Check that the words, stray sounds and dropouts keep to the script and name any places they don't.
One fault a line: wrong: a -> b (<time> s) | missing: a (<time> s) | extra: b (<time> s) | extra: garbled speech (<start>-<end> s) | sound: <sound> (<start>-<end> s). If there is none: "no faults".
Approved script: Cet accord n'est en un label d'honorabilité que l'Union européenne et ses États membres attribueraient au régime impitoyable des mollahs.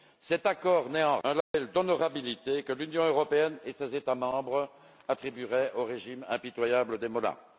sound: dropout (1.4-1.5 s)